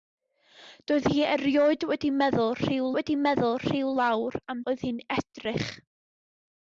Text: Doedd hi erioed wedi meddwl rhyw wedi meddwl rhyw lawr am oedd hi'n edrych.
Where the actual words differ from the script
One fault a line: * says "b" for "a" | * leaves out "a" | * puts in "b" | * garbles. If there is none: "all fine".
all fine